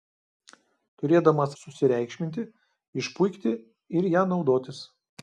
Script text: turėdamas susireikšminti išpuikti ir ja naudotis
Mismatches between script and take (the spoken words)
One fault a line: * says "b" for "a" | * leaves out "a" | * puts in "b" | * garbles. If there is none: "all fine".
all fine